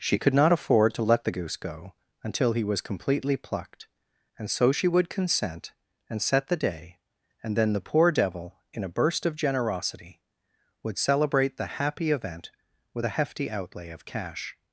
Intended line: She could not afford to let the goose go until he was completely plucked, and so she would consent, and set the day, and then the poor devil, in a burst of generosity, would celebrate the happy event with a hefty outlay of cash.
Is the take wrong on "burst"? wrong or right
right